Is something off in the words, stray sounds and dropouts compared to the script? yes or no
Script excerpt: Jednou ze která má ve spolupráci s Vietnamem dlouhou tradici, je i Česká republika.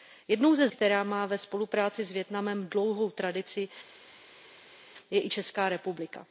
no